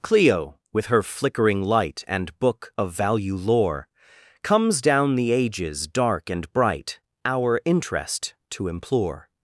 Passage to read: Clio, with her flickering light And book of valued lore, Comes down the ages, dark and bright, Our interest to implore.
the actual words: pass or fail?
fail